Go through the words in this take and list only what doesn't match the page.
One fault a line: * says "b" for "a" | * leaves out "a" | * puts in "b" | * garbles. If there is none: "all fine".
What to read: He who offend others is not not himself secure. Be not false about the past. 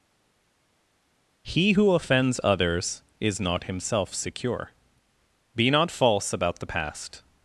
* says "offends" for "offend"
* leaves out "not"